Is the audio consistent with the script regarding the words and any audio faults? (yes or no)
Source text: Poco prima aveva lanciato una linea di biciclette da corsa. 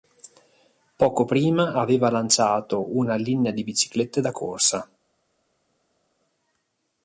yes